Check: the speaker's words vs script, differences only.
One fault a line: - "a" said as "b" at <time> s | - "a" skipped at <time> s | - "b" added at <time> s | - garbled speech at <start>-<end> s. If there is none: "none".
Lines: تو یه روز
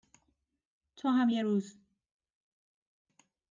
- "هم" added at 1.1 s